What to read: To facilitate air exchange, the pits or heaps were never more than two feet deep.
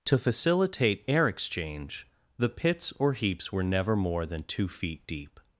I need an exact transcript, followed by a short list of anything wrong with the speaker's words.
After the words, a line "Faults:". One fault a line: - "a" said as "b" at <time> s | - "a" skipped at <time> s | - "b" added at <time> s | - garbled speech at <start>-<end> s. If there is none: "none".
To facilitate air exchange, the pits or heaps were never more than two feet deep.
Faults:
none